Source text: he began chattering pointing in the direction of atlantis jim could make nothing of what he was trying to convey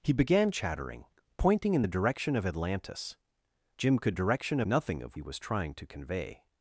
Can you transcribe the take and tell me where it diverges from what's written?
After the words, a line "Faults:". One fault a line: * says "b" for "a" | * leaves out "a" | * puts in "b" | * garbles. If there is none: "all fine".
he began chattering pointing in the direction of atlantis jim could direction nothing of he was trying to convey
Faults:
* says "direction" for "make"
* leaves out "what"